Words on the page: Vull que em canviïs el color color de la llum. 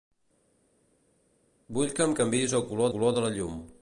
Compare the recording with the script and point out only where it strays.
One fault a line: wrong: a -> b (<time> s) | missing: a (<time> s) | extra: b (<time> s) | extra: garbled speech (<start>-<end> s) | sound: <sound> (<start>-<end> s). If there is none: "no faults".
no faults